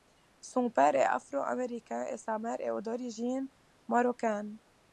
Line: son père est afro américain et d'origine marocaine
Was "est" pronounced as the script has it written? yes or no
yes